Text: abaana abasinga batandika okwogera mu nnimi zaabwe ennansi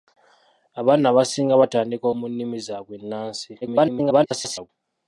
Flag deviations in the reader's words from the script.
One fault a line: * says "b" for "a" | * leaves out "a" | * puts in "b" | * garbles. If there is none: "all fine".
* leaves out "okwogera"
* garbles